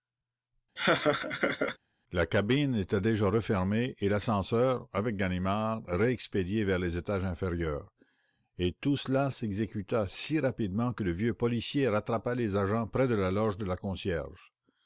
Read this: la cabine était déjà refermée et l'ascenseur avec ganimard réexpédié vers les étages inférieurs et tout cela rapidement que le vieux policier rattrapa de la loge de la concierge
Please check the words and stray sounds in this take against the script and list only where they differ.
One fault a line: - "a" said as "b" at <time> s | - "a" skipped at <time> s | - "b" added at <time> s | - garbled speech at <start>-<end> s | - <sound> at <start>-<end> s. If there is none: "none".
- laugh at 0.8-1.8 s
- "s'exécuta si" added at 9.3 s
- "les agents près" added at 12.3 s